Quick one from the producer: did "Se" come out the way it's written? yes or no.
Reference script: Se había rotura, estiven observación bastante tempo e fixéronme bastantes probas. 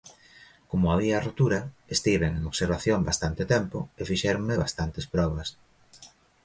no